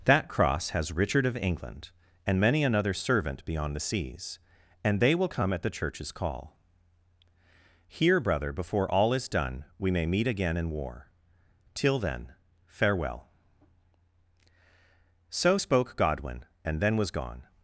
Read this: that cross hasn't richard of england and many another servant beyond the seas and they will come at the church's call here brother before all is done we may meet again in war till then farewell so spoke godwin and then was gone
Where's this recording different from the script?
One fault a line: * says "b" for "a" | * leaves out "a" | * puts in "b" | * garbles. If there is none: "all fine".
* says "has" for "hasn't"